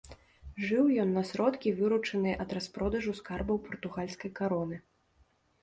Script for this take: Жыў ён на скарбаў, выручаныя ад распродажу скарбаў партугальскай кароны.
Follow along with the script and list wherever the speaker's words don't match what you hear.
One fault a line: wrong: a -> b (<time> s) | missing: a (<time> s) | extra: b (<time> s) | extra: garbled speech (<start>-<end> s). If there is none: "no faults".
wrong: скарбаў -> сродкі (1.3 s)